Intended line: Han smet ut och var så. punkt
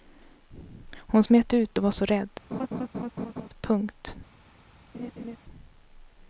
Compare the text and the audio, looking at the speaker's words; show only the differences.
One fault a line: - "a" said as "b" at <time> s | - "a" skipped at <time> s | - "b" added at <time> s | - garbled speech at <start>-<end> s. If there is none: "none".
- "Han" said as "Hon" at 1.0 s
- "rädd" added at 2.1 s